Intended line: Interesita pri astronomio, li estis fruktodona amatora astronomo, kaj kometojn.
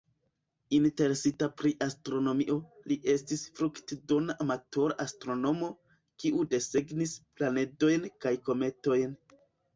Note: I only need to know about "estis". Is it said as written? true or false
true